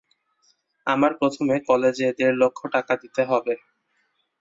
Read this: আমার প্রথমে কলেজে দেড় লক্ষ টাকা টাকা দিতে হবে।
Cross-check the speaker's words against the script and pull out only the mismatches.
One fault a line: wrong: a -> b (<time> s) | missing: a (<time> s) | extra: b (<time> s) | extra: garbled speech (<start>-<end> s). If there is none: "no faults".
missing: টাকা (2.9 s)